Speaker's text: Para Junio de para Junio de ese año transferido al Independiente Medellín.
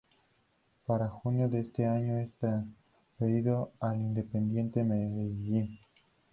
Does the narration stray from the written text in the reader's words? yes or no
yes